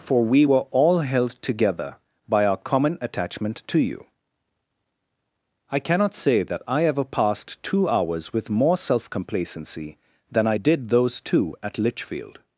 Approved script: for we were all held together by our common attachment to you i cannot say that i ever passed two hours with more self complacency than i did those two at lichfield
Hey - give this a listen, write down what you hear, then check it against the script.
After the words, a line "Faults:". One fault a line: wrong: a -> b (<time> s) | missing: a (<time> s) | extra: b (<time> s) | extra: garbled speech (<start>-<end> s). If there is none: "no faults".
for we were all held together by our common attachment to you i cannot say that i ever passed two hours with more self complacency than i did those two at lichfield
Faults:
no faults